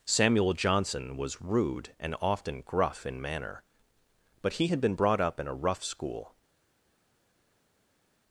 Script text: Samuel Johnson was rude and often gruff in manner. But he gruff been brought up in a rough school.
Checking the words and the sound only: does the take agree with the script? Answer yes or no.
no